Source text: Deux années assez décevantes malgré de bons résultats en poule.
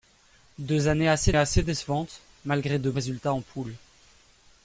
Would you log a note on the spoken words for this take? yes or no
yes